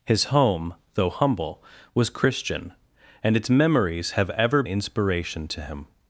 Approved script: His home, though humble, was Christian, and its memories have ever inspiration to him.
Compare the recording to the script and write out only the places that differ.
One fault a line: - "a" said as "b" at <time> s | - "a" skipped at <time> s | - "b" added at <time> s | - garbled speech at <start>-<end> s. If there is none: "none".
none